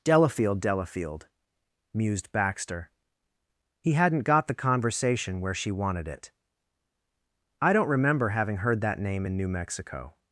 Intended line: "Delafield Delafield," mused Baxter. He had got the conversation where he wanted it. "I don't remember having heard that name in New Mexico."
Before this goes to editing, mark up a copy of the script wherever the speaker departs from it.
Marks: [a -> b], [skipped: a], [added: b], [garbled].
"Delafield Delafield," mused Baxter. He [had -> hadn't] got the conversation where [he -> she] wanted it. "I don't remember having heard that name in New Mexico."